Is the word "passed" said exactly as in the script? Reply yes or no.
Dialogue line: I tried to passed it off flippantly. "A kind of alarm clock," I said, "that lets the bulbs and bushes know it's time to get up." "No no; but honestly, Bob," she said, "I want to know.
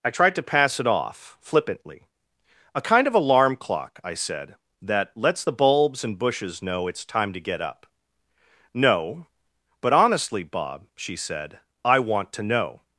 no